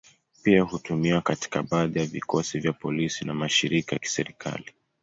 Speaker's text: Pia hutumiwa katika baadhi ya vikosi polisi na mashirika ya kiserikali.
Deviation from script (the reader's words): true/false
true